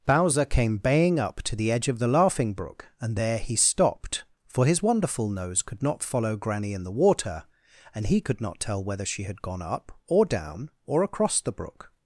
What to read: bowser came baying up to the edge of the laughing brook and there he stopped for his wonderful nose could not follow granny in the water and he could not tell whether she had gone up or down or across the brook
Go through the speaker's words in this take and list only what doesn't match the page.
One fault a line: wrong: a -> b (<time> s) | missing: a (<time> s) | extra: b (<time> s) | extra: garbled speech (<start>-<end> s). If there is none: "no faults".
no faults